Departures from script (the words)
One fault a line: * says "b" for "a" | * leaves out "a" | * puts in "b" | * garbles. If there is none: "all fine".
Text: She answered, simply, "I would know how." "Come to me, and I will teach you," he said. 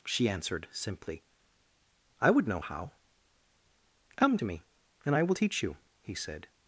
all fine